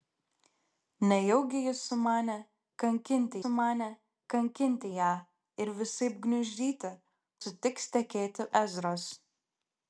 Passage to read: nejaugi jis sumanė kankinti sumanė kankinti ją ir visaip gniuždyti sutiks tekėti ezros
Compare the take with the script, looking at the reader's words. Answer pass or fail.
pass